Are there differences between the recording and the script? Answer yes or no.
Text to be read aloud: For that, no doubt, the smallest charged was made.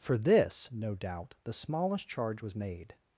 yes